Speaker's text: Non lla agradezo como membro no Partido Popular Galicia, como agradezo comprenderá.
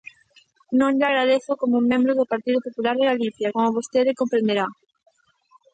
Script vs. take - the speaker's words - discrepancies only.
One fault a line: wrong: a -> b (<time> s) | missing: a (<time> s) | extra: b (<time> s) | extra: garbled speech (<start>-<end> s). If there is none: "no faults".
wrong: no -> do (2.2 s)
extra: de (3.0 s)
wrong: agradezo -> vostede (3.8 s)